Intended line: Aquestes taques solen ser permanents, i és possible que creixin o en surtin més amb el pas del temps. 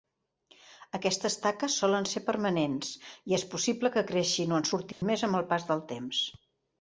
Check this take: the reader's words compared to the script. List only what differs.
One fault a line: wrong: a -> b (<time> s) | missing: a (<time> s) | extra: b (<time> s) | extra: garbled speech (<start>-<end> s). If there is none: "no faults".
no faults